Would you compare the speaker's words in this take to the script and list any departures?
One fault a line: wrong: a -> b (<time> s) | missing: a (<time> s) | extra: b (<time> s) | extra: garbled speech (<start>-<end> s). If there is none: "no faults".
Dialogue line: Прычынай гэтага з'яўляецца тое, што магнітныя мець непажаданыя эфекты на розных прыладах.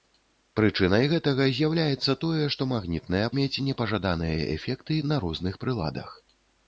no faults